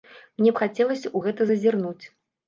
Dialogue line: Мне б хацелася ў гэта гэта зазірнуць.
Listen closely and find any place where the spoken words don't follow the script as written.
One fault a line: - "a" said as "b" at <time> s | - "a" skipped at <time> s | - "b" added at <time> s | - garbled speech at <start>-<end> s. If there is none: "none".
- "гэта" skipped at 1.5 s